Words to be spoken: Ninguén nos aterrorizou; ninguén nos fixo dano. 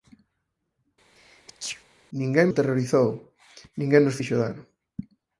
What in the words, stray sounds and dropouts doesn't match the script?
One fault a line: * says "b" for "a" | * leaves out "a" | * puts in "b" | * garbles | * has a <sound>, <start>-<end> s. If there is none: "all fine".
* has a sneeze, 1.2-1.8 s
* leaves out "nos"